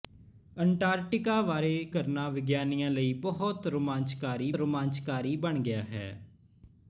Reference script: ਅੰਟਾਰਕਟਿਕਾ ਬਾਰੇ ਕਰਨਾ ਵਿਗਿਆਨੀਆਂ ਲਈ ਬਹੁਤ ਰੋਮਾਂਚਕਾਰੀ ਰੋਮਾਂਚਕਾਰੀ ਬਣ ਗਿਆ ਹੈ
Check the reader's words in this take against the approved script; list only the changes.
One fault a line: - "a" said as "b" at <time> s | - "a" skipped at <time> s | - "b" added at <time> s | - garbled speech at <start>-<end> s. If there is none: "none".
none